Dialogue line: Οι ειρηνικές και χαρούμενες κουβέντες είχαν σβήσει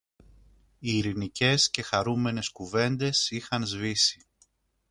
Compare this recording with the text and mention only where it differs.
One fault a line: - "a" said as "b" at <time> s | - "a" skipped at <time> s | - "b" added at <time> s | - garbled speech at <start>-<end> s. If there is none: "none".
none